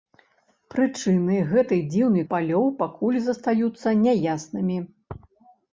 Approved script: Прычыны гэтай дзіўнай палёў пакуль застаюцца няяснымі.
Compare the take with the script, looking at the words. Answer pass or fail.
pass